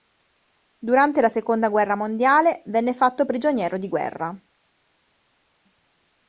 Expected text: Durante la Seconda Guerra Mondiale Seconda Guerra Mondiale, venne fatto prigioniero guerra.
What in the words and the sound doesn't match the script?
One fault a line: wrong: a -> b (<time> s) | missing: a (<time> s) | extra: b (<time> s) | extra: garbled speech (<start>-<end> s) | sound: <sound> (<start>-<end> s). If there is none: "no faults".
missing: Seconda Guerra Mondiale (2.6 s)
extra: di (3.8 s)